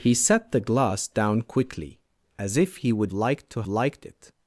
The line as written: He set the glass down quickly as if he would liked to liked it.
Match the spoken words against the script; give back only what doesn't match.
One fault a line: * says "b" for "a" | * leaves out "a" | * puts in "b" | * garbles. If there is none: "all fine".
all fine